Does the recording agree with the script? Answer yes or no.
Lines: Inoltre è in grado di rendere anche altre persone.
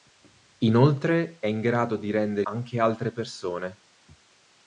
yes